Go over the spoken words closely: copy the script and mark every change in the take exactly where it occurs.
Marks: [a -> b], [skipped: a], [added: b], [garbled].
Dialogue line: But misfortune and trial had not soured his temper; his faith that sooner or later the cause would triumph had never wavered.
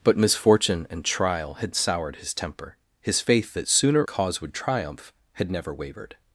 But misfortune and trial had [skipped: not] soured his temper; his faith that sooner [skipped: or later the] cause would triumph had never wavered.